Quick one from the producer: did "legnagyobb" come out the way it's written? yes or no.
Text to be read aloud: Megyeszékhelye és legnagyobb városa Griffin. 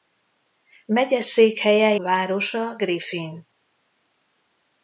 no